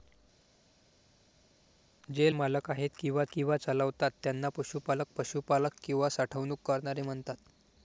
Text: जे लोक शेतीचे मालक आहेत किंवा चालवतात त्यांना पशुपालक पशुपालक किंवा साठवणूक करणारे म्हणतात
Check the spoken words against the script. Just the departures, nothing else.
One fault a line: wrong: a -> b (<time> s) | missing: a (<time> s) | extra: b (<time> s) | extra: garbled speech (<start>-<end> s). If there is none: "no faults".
missing: लोक शेतीचे (2.3 s)
extra: किंवा (3.3 s)